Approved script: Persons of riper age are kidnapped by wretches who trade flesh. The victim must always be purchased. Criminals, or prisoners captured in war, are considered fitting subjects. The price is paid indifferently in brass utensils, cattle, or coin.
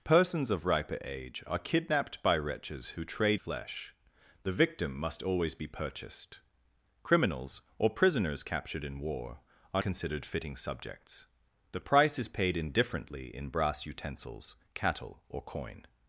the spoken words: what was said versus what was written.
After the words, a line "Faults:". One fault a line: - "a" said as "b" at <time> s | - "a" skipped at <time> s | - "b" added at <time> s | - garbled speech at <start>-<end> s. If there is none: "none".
Persons of riper age are kidnapped by wretches who trade flesh. The victim must always be purchased. Criminals, or prisoners captured in war, are considered fitting subjects. The price is paid indifferently in brass utensils, cattle, or coin.
Faults:
none